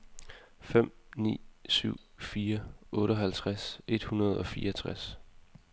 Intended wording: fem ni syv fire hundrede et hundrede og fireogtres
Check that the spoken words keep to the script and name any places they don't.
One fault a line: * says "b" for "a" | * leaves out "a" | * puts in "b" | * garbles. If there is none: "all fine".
* says "otteoghalvtreds" for "hundrede"